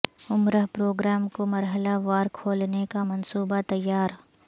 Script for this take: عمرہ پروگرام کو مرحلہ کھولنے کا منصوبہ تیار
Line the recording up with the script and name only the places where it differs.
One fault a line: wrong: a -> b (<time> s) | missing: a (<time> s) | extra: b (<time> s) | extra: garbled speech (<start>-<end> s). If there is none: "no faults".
extra: وار (2.0 s)